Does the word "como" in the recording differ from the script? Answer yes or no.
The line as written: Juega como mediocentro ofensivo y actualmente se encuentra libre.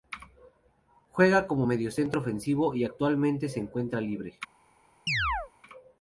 no